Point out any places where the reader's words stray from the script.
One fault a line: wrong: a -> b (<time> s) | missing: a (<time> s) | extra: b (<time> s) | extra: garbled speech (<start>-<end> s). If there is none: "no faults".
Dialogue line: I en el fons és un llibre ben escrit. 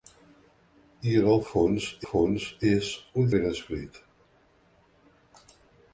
extra: fons (2.1 s)
missing: llibre (3.3 s)